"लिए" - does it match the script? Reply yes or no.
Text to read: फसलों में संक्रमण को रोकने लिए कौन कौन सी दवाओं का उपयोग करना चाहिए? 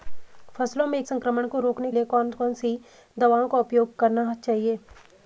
yes